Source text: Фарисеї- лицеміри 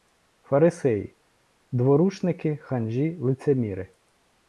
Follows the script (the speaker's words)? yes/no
no